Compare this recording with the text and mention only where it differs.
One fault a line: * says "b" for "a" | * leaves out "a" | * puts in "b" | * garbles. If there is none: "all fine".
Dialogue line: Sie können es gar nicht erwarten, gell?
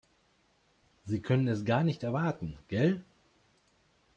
all fine